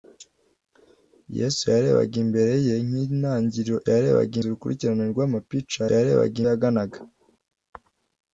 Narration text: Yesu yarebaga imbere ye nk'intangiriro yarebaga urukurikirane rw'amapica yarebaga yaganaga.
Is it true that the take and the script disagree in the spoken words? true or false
false